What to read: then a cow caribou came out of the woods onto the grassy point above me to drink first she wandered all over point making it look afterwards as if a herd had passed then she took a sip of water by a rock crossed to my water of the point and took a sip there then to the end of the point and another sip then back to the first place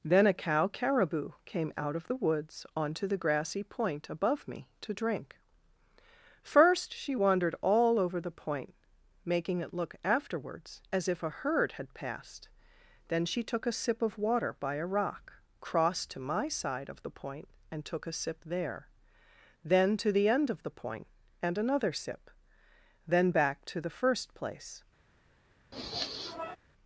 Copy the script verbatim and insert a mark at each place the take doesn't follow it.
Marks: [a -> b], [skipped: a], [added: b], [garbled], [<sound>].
then a cow caribou came out of the woods onto the grassy point above me to drink first she wandered all over [added: the] point making it look afterwards as if a herd had passed then she took a sip of water by a rock crossed to my [water -> side] of the point and took a sip there then to the end of the point and another sip then back to the first place [sniff]